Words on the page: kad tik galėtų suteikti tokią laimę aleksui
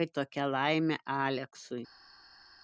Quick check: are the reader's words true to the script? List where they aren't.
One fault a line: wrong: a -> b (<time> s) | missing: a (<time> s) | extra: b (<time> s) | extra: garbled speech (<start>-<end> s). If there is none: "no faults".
missing: tik galėtų suteikti (0.1 s)